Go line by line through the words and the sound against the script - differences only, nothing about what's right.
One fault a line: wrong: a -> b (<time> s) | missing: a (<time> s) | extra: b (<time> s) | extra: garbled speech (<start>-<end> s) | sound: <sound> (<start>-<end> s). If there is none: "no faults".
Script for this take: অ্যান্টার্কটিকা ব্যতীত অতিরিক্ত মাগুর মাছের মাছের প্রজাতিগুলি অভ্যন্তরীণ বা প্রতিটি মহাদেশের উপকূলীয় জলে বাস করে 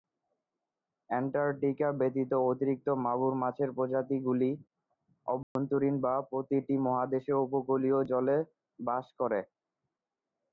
missing: মাছের (3.7 s)
sound: dropout (5.4-5.6 s)